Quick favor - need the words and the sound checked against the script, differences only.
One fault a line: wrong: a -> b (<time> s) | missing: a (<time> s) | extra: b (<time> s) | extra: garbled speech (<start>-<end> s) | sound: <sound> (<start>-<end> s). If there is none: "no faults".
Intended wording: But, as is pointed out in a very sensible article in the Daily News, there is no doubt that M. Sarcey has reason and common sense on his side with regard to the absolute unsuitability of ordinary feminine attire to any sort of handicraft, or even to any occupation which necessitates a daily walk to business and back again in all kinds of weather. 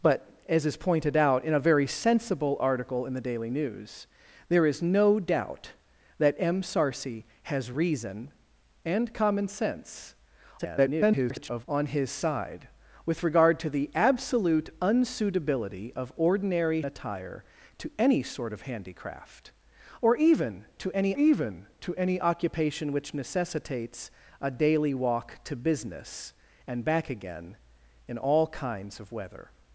extra: garbled speech (10.6-11.7 s)
missing: feminine (16.8 s)
extra: even to any (21.1 s)